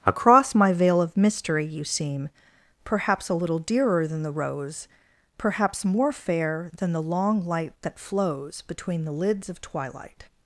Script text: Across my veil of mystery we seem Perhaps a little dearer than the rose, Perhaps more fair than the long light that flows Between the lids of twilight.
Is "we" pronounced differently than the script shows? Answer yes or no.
yes